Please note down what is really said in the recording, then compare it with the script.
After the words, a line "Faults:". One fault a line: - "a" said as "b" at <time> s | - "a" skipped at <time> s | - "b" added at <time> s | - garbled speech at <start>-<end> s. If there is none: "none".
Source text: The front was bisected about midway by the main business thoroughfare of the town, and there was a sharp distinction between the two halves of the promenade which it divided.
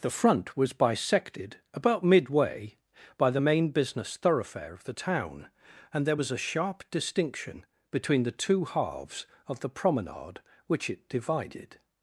The front was bisected about midway by the main business thoroughfare of the town, and there was a sharp distinction between the two halves of the promenade which it divided.
Faults:
none